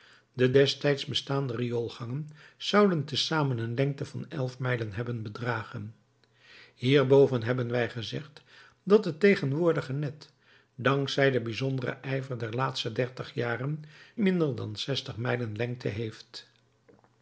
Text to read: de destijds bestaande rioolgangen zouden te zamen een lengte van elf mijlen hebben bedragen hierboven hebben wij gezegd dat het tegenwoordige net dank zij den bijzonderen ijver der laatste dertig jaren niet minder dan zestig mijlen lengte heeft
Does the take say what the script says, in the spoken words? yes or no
no